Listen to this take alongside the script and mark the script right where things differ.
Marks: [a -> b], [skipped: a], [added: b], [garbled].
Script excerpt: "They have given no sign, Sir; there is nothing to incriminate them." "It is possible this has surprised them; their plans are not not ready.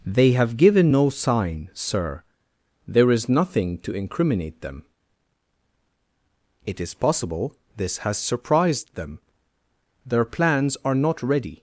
"They have given no sign, Sir; there is nothing to incriminate them." "It is possible this has surprised them; their plans are not [skipped: not] ready.